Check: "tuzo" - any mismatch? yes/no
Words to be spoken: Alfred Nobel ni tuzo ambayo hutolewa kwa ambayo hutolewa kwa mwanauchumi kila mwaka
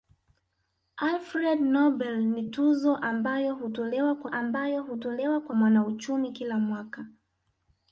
no